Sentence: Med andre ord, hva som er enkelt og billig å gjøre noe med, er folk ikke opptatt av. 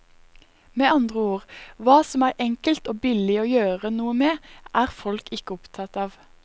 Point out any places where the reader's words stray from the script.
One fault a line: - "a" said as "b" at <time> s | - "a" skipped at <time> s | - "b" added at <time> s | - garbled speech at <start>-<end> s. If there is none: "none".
none